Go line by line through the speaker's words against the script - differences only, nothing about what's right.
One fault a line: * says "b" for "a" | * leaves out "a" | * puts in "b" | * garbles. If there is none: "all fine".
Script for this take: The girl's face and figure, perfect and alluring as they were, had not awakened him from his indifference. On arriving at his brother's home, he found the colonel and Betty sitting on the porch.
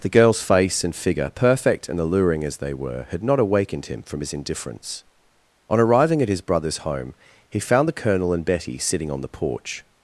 all fine